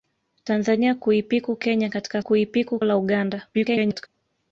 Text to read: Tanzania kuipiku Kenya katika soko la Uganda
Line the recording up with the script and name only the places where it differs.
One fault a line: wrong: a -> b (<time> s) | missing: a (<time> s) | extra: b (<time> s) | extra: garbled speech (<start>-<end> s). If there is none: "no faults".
wrong: soko -> kuipiku (2.2 s)
extra: garbled speech (3.5-4.1 s)